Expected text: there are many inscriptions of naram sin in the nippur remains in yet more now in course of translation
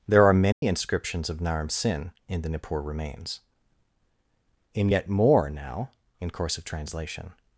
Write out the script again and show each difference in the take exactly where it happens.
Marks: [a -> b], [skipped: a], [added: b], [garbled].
there are many inscriptions of naram sin in the nippur remains in yet more now in course of translation